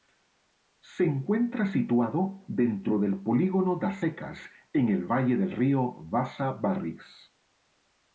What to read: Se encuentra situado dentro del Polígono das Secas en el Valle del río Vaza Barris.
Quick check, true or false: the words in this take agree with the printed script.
true